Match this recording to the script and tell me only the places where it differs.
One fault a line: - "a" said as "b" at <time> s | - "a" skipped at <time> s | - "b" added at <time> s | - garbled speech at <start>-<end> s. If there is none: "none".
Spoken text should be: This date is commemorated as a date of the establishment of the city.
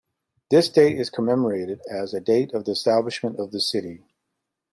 none